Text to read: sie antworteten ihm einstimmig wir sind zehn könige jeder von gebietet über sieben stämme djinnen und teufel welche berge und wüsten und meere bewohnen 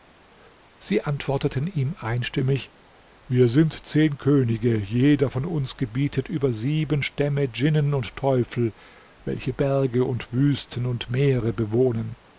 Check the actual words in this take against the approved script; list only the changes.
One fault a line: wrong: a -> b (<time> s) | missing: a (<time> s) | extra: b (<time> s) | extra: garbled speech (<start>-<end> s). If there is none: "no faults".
extra: uns (5.5 s)